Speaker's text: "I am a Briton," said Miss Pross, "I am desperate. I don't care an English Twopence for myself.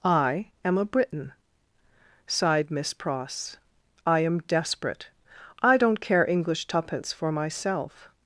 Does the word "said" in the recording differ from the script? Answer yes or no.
yes